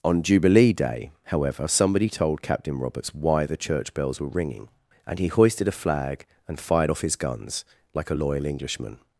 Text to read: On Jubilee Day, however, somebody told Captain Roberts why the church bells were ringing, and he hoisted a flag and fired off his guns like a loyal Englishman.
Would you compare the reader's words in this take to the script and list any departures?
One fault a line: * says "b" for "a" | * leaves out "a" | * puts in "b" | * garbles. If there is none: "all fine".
all fine